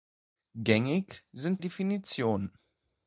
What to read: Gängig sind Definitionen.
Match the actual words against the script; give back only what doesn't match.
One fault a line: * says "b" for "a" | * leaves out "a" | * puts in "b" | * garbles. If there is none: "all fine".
all fine